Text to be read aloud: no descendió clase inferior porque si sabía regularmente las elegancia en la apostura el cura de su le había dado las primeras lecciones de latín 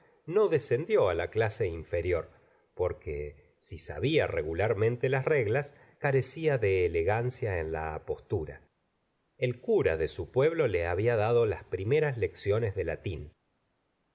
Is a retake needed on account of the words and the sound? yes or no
yes